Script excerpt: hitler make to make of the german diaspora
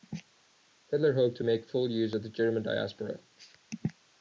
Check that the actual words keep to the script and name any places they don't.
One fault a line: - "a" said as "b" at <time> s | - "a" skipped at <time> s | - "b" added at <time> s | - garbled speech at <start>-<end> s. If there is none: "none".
- "make" said as "hoped" at 1.1 s
- "full use" added at 1.7 s